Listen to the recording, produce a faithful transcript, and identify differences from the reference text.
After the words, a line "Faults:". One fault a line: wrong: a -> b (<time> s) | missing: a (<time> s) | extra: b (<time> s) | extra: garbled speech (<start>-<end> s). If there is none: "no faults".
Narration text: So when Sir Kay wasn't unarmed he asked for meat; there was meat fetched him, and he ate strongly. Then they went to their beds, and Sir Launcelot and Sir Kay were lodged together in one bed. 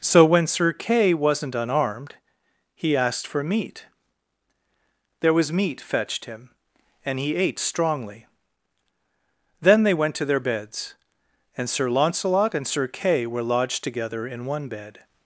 So when Sir Kay wasn't unarmed he asked for meat; there was meat fetched him, and he ate strongly. Then they went to their beds, and Sir Launcelot and Sir Kay were lodged together in one bed.
Faults:
no faults